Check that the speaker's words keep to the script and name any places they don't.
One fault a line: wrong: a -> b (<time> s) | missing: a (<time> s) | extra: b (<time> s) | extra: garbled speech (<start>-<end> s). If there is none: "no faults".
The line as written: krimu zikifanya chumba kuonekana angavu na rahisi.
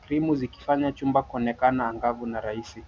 no faults